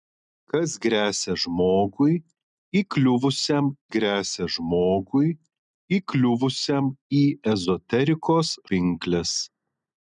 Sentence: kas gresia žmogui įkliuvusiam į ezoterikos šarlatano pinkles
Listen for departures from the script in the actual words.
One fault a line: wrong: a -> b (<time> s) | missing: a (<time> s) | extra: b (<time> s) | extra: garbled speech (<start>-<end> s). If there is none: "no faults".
extra: gresia žmogui įkliuvusiam (4.0 s)
missing: šarlatano (8.5 s)